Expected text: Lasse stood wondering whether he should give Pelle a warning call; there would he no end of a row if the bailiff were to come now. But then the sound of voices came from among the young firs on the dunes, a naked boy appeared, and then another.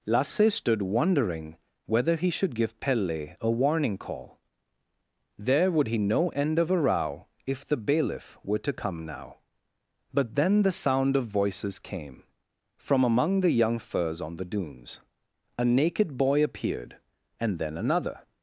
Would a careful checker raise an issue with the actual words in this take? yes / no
no